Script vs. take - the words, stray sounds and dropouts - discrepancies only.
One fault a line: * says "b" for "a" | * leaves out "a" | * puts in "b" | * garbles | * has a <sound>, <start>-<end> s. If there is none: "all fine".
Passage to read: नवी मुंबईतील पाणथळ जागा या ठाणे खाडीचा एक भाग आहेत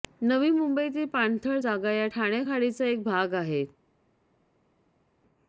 all fine